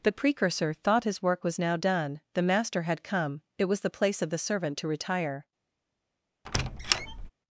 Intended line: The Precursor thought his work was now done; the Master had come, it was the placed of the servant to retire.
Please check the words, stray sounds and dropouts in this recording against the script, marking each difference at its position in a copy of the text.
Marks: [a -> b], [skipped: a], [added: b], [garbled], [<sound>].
The Precursor thought his work was now done; the Master had come, it was the [placed -> place] of the servant to retire. [squeak]